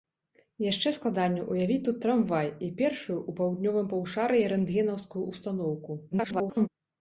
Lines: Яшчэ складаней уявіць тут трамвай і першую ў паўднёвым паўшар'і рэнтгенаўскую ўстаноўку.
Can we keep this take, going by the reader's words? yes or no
no